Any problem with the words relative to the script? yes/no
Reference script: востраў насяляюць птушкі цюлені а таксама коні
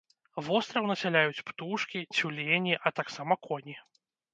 no